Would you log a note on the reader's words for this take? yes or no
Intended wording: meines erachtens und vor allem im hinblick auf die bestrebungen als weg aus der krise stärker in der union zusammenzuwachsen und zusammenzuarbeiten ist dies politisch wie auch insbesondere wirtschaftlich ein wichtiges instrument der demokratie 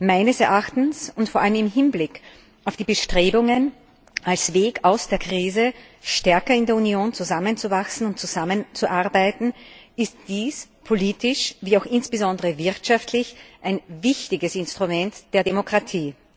no